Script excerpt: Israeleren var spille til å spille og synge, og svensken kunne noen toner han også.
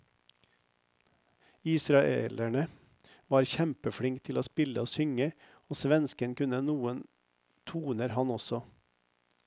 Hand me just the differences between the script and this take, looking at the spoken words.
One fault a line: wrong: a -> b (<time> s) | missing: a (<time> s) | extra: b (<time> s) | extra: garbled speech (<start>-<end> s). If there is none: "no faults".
wrong: spille -> kjempeflink (3.5 s)